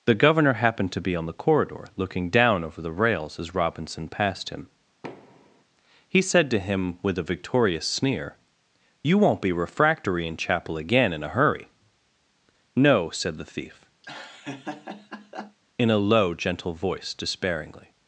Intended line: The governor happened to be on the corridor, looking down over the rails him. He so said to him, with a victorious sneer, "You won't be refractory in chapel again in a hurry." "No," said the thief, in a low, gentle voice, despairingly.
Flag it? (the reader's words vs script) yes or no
yes